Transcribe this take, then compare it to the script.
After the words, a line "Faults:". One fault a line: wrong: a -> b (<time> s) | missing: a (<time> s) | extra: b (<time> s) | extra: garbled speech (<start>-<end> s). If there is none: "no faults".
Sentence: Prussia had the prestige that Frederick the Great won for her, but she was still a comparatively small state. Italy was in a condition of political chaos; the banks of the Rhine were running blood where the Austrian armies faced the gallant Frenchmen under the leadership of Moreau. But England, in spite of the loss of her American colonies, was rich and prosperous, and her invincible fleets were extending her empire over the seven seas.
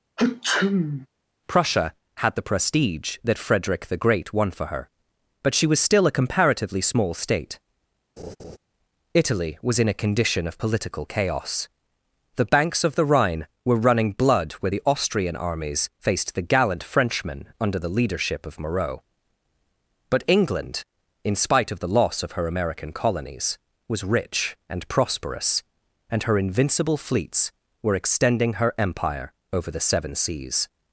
Prussia had the prestige that Frederick the Great won for her, but she was still a comparatively small state. Italy was in a condition of political chaos; the banks of the Rhine were running blood where the Austrian armies faced the gallant Frenchmen under the leadership of Moreau. But England, in spite of the loss of her American colonies, was rich and prosperous, and her invincible fleets were extending her empire over the seven seas.
Faults:
no faults